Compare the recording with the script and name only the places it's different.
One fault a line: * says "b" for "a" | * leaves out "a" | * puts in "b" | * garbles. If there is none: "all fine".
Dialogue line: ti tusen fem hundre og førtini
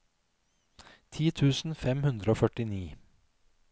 all fine